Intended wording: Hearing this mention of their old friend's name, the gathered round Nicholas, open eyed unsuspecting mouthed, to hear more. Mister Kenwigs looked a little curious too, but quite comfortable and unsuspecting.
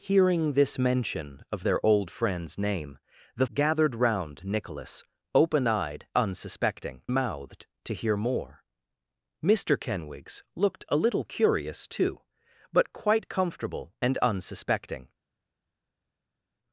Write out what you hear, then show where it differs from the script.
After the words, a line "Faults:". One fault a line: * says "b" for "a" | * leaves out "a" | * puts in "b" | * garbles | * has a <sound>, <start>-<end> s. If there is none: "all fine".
Hearing this mention of their old friend's name, the gathered round Nicholas, open eyed unsuspecting mouthed, to hear more. Mister Kenwigs looked a little curious too, but quite comfortable and unsuspecting.
Faults:
all fine